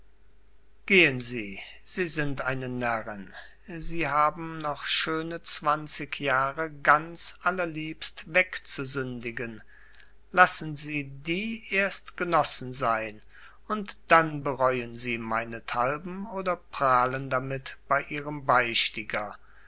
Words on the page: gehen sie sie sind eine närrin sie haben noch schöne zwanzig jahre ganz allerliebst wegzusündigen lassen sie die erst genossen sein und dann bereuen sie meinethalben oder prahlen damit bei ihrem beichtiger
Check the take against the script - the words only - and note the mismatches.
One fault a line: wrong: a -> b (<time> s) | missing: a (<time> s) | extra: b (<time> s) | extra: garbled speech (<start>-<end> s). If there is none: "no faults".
no faults